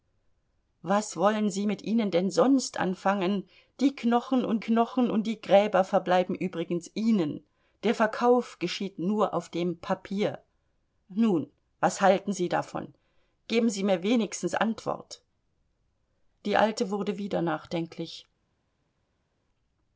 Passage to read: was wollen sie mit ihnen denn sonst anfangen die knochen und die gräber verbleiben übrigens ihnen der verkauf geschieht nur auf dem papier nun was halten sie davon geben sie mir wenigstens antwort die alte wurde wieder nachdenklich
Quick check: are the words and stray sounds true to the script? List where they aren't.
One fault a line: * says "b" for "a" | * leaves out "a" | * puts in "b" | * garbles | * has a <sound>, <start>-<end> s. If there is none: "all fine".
* puts in "knochen und"